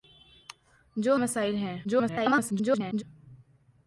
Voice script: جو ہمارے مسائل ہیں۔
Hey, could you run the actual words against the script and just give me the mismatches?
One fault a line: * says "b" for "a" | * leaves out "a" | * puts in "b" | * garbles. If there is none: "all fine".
* leaves out "ہمارے"
* garbles